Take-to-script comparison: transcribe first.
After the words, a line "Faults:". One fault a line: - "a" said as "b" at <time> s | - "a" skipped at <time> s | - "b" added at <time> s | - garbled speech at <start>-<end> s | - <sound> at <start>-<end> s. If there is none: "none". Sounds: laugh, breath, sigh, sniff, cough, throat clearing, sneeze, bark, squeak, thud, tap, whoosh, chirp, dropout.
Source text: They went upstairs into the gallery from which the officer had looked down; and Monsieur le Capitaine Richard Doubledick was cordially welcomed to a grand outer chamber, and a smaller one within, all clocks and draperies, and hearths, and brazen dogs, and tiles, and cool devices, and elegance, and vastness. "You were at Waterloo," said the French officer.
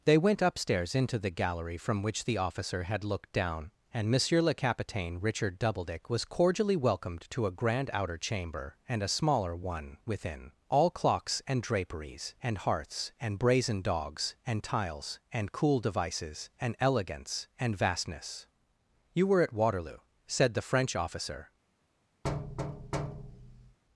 They went upstairs into the gallery from which the officer had looked down; and Monsieur le Capitaine Richard Doubledick was cordially welcomed to a grand outer chamber, and a smaller one within, all clocks and draperies, and hearths, and brazen dogs, and tiles, and cool devices, and elegance, and vastness. "You were at Waterloo," said the French officer.
Faults:
- thud at 22.2-23.8 s